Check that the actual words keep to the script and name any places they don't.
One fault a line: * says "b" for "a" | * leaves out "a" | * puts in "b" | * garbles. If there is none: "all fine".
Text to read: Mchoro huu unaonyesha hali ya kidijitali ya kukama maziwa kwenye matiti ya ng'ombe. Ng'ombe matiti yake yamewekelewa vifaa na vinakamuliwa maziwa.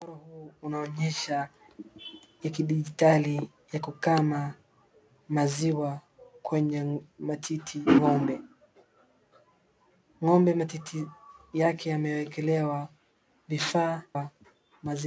* leaves out "hali"
* leaves out "ya"
* leaves out "na vinakamuliwa"